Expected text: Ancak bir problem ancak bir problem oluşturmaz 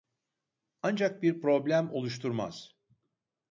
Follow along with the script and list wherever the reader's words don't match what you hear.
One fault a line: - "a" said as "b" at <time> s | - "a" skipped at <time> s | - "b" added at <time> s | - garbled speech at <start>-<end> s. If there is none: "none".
- "ancak bir problem" skipped at 1.9 s